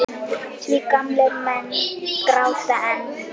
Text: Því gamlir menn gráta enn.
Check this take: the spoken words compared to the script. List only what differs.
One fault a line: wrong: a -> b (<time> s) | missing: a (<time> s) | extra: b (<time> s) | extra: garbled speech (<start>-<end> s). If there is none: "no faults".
no faults